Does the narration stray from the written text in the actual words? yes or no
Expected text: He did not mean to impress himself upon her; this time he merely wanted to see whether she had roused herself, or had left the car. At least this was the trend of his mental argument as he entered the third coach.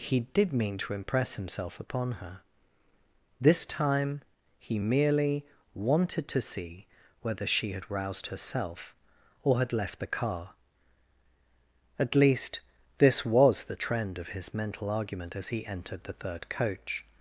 yes